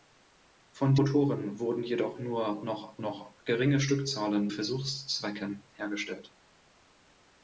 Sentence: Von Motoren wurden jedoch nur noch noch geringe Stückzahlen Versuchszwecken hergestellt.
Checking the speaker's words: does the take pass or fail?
pass